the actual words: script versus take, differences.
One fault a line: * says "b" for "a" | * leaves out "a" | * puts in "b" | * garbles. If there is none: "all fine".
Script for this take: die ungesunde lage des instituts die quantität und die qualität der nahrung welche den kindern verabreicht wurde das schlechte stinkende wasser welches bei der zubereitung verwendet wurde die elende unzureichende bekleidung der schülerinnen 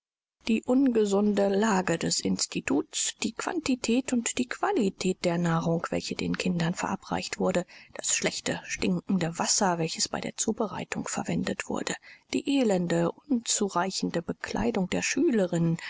all fine